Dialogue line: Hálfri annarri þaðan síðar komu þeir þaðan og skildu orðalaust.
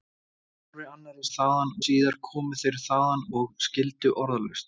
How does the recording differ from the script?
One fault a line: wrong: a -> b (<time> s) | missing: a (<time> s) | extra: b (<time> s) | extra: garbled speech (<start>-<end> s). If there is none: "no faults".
no faults